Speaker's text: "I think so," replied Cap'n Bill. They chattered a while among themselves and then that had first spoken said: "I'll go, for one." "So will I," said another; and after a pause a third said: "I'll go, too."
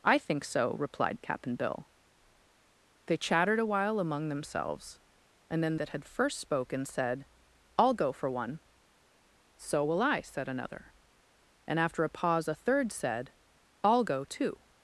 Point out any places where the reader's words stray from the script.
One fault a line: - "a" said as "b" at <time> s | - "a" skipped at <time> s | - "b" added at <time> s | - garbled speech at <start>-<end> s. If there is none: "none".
none